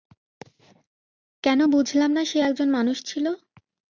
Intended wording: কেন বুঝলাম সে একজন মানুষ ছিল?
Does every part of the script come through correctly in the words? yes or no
no